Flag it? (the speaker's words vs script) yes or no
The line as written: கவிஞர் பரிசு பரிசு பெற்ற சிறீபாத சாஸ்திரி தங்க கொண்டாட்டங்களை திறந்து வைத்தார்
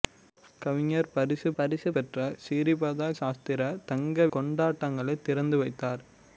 no